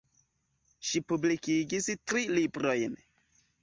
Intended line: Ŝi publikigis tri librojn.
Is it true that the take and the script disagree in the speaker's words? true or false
false